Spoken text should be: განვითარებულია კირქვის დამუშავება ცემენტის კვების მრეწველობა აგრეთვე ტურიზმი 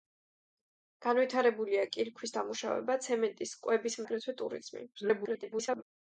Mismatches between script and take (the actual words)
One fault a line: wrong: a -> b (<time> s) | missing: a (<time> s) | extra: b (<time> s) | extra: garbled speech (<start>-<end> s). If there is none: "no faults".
missing: მრეწველობა (4.0 s)
extra: garbled speech (4.9-5.8 s)